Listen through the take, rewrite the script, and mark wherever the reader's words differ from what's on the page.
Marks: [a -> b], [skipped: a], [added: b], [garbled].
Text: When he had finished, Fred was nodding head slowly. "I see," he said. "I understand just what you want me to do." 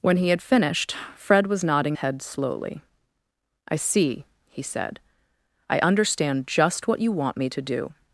When he had finished, Fred was nodding head slowly. "I see," he said. "I understand just what you want me to do."